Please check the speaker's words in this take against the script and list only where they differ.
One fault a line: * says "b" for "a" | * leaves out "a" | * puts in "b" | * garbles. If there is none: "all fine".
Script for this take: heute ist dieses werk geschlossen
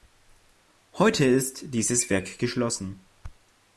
all fine